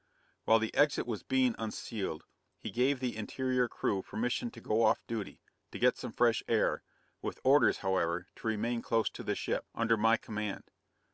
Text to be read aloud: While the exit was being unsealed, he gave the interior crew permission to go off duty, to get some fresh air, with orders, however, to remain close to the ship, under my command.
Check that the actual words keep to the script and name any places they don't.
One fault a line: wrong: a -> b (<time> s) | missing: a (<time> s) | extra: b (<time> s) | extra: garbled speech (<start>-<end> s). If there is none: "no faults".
no faults